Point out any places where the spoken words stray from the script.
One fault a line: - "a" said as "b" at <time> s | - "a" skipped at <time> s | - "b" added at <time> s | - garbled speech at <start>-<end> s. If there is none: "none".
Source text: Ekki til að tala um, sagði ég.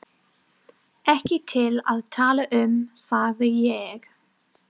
none